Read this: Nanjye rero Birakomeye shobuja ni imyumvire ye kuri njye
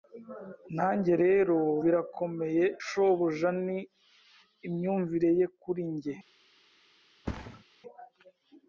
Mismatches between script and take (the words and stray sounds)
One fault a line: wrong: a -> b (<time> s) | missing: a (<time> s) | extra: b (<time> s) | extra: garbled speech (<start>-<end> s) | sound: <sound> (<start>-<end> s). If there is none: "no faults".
sound: thud (7.2-7.6 s)